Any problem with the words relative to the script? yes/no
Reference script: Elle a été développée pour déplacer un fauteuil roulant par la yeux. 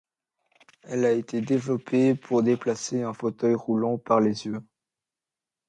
yes